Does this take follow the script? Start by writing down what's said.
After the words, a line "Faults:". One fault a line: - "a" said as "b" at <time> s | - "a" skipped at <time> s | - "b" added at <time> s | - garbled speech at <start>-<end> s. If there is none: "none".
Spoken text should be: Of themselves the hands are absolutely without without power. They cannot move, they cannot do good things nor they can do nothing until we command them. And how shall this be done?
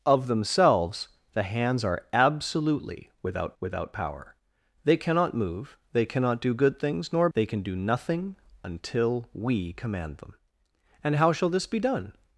Of themselves the hands are absolutely without without power. They cannot move, they cannot do good things nor they can do nothing until we command them. And how shall this be done?
Faults:
none